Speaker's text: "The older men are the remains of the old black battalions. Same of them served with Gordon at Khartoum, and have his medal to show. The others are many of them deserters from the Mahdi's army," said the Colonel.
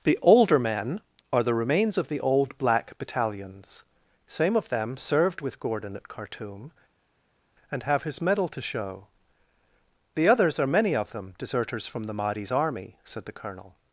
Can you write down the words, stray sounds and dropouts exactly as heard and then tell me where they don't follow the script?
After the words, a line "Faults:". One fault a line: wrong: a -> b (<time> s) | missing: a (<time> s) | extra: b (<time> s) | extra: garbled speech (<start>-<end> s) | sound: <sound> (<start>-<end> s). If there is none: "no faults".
"The older men are the remains of the old black battalions. Same of them served with Gordon at Khartoum, and have his medal to show. The others are many of them deserters from the Mahdi's army," said the Colonel.
Faults:
no faults